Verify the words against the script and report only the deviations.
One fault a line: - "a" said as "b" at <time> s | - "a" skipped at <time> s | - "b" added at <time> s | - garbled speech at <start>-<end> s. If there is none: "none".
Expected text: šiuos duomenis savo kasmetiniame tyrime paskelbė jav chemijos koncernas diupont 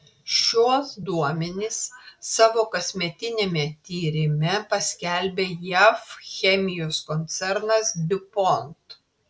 none